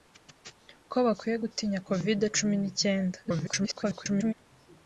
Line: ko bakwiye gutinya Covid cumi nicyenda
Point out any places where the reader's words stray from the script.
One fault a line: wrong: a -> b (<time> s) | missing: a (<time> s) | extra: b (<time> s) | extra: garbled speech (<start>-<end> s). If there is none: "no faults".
extra: garbled speech (3.2-4.3 s)